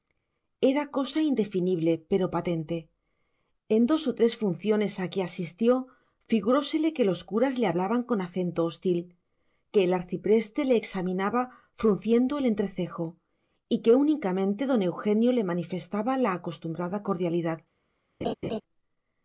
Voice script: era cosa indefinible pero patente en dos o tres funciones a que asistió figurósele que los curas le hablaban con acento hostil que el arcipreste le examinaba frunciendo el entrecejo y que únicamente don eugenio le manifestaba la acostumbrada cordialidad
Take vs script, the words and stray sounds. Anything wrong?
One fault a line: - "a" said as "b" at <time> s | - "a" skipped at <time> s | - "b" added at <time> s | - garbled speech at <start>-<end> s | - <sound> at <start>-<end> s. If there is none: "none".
- laugh at 18.2-18.6 s